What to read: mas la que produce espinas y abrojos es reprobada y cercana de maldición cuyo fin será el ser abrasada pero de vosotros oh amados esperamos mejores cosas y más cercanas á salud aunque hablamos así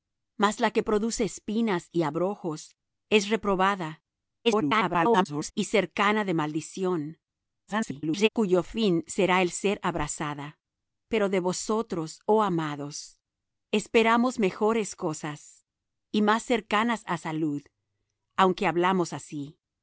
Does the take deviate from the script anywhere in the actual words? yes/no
yes